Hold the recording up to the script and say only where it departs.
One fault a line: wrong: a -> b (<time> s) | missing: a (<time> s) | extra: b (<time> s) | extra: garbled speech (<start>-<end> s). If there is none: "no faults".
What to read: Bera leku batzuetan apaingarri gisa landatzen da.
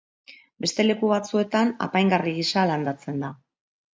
wrong: Bera -> Beste (0.6 s)